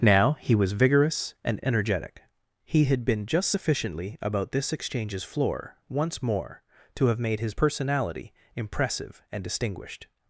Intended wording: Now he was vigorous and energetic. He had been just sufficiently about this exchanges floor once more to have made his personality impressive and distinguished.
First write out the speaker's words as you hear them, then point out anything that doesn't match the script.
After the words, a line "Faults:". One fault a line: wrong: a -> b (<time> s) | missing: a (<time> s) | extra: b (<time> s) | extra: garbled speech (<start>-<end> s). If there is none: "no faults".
Now he was vigorous and energetic. He had been just sufficiently about this exchanges floor once more to have made his personality impressive and distinguished.
Faults:
no faults